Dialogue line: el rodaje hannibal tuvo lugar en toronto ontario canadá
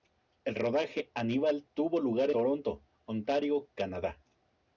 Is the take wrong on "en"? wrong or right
wrong